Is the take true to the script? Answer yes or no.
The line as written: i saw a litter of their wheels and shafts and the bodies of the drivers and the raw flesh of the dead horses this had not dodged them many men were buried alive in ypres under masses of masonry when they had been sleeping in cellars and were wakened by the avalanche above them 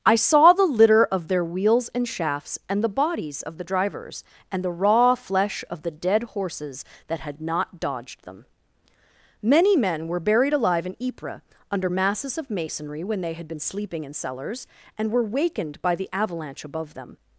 no